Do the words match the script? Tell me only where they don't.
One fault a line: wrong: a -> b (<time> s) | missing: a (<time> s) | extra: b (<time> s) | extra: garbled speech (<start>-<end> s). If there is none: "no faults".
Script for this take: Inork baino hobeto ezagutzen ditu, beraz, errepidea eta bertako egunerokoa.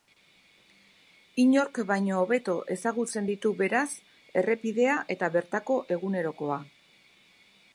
no faults